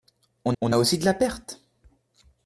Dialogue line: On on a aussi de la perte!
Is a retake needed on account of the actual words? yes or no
no